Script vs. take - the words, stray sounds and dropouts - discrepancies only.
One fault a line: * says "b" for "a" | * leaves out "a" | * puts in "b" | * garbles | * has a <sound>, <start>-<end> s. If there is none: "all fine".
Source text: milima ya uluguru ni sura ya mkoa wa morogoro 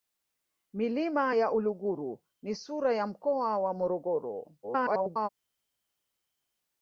* garbles